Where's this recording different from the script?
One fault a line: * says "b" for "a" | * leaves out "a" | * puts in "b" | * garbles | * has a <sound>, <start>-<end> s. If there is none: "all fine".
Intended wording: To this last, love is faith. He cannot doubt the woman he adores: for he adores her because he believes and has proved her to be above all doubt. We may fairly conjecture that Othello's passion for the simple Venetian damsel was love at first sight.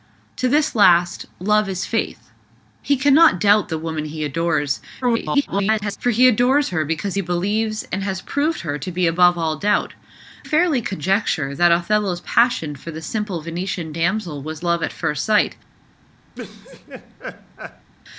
* garbles
* leaves out "We may"
* has a laugh, 16.3-17.9 s